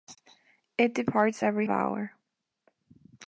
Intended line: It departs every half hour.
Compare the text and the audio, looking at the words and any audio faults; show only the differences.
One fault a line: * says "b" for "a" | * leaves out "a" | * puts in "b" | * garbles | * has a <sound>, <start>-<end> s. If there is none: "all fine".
* leaves out "half"